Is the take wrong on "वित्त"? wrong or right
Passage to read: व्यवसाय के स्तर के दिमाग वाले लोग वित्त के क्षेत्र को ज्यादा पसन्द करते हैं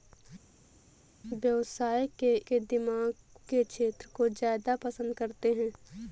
wrong